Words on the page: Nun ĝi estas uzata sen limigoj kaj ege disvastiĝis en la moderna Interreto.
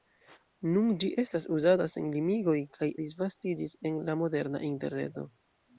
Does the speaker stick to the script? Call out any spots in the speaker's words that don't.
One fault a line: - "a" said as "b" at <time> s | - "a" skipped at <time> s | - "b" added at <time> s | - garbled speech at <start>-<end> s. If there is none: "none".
- "ege" skipped at 2.9 s